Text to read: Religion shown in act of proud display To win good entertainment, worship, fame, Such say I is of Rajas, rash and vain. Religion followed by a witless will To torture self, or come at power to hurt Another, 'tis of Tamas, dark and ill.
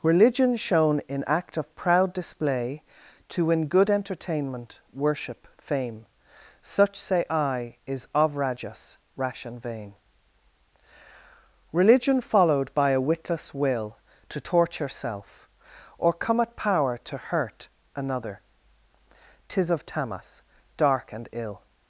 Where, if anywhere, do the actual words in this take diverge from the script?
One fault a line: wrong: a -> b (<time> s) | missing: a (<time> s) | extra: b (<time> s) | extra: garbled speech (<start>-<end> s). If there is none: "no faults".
no faults